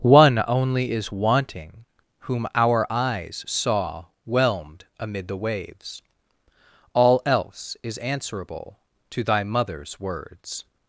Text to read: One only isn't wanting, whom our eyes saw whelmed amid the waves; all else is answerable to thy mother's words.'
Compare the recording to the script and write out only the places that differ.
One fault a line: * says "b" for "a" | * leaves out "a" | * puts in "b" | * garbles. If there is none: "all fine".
* says "is" for "isn't"